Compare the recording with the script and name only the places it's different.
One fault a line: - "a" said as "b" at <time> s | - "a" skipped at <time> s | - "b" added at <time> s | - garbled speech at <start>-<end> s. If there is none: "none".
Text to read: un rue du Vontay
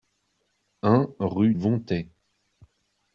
- "du" skipped at 1.5 s